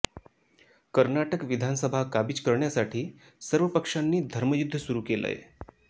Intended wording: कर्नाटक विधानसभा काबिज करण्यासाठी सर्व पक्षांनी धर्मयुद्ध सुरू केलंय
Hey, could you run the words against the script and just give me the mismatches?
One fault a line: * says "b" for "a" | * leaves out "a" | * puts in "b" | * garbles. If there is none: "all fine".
all fine